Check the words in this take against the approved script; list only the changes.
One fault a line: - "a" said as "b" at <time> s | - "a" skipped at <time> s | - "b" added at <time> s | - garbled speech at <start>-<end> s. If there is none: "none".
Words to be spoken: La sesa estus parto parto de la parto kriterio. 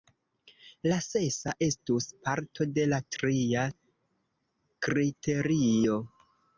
- "parto" skipped at 2.7 s
- "parto" said as "tria" at 3.2 s